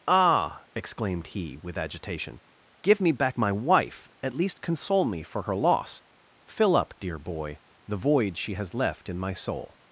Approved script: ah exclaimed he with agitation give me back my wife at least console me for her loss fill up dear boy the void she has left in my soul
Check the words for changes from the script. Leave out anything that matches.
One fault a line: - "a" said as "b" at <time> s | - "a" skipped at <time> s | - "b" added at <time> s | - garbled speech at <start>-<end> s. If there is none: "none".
none